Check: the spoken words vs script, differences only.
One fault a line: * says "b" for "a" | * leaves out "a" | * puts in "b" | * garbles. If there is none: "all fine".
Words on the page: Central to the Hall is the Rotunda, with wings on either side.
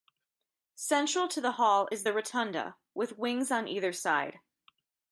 all fine